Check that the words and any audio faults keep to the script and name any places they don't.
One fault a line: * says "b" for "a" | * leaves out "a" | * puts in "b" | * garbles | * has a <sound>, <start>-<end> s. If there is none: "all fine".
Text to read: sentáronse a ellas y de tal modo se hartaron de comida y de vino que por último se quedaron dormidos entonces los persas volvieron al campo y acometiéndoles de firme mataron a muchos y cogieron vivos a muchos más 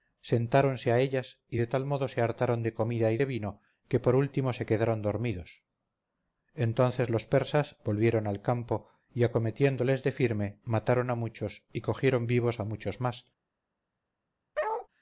* has a bark, 14.5-14.9 s